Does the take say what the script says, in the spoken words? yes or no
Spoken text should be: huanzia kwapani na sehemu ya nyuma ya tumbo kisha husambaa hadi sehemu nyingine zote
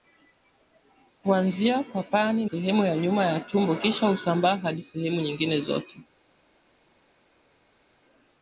no